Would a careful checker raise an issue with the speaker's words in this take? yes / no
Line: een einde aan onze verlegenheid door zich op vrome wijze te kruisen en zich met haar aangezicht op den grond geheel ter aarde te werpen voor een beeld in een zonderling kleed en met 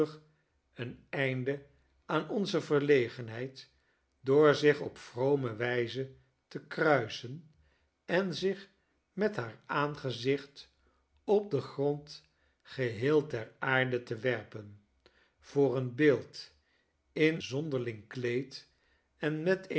yes